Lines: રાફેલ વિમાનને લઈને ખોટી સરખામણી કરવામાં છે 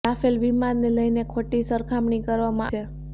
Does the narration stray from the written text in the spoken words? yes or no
no